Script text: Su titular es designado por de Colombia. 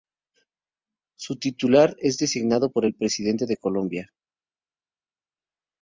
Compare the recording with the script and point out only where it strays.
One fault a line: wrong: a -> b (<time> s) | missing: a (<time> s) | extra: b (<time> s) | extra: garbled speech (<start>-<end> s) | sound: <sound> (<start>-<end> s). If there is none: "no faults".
extra: el Presidente (2.8 s)